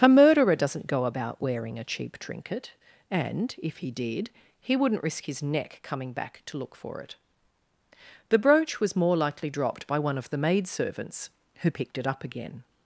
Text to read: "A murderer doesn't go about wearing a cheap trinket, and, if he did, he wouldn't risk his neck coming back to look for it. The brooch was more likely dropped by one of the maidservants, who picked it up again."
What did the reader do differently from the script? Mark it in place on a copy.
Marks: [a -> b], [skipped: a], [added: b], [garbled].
"A murderer doesn't go about wearing a cheap trinket, and, if he did, he wouldn't risk his neck coming back to look for it. The brooch was more likely dropped by one of the maidservants, who picked it up again."